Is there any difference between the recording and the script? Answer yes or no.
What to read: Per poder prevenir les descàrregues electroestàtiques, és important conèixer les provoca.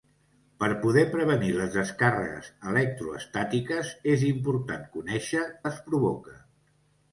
no